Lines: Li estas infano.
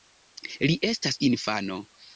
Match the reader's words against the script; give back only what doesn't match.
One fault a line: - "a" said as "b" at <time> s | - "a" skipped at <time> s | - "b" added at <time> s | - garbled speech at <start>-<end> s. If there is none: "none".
none